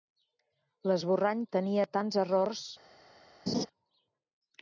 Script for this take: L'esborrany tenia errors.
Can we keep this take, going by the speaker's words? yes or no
no